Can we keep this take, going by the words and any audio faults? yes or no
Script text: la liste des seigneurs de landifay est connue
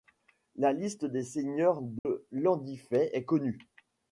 no